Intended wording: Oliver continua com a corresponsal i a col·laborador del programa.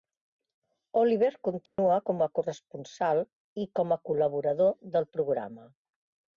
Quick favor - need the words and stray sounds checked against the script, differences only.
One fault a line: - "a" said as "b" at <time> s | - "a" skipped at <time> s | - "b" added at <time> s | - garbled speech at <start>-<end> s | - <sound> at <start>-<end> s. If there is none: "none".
- dropout at 1.7-1.8 s
- "com" added at 3.8 s